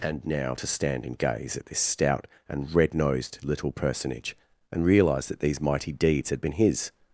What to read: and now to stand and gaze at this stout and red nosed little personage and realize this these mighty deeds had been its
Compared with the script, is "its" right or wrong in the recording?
wrong